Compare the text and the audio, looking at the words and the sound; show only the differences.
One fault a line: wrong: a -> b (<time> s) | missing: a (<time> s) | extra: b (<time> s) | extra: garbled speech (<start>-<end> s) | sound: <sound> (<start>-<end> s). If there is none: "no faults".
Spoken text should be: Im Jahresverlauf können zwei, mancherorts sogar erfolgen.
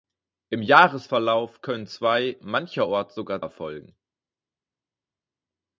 no faults